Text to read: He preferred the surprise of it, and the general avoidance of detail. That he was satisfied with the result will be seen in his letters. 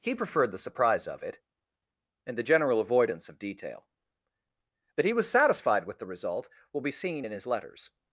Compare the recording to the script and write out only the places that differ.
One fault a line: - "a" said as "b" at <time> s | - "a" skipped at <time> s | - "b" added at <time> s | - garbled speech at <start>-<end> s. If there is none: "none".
none